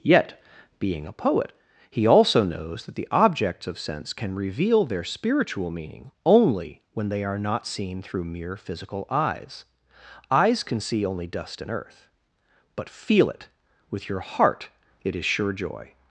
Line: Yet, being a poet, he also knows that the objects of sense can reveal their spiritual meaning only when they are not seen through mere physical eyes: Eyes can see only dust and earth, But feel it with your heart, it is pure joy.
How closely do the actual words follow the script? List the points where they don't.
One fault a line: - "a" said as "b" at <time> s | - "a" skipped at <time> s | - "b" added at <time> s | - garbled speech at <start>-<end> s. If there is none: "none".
- "pure" said as "sure" at 15.2 s